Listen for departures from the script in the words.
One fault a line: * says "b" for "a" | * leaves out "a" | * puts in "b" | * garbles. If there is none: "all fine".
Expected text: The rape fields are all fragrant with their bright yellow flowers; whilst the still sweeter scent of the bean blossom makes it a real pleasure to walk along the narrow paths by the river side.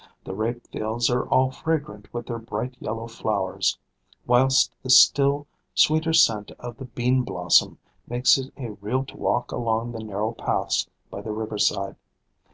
* leaves out "pleasure"